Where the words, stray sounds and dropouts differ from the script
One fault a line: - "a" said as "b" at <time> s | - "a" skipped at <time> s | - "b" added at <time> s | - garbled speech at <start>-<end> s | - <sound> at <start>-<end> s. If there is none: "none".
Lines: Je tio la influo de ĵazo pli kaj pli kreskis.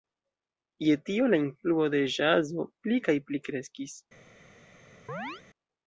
- chirp at 5.1-5.4 s